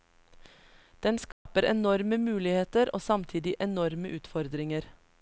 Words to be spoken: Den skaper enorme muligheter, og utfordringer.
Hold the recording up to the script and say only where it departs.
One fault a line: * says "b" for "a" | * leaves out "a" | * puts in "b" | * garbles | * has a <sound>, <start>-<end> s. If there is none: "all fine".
* has a dropout, 1.3-1.5 s
* puts in "samtidig enorme"